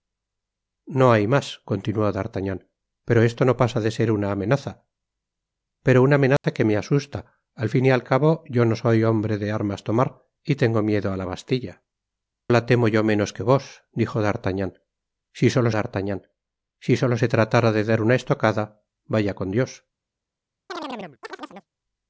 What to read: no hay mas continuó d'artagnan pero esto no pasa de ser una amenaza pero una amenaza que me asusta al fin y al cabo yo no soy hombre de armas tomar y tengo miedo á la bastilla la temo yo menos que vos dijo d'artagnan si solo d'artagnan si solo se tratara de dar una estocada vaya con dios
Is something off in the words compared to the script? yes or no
no